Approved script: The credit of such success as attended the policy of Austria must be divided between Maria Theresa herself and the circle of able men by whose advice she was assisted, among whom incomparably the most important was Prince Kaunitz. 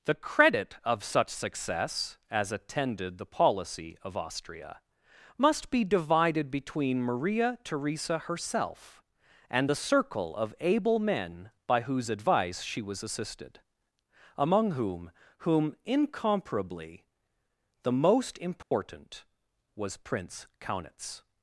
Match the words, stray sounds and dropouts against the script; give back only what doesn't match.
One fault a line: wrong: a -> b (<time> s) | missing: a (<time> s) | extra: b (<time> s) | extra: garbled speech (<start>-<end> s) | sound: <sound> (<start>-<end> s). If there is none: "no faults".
extra: whom (15.4 s)
sound: dropout (18.6-18.7 s)